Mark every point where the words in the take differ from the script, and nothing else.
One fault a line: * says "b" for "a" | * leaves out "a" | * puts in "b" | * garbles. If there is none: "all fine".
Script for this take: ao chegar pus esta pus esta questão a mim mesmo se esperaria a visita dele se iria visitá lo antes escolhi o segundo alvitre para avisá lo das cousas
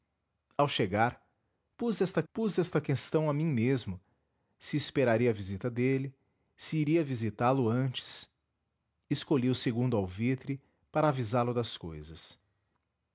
all fine